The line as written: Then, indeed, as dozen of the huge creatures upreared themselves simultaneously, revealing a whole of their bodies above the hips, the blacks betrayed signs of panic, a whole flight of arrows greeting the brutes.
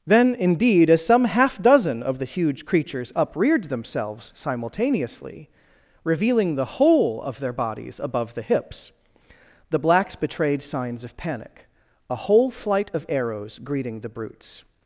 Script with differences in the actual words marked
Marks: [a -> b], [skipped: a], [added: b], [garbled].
Then, indeed, as [added: some half] dozen of the huge creatures upreared themselves simultaneously, revealing [a -> the] whole of their bodies above the hips, the blacks betrayed signs of panic, a whole flight of arrows greeting the brutes.